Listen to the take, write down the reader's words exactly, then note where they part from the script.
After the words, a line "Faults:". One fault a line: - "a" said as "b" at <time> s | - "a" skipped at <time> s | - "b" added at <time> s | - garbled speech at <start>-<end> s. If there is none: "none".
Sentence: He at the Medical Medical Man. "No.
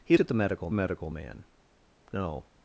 He at the Medical Medical Man. "No.
Faults:
none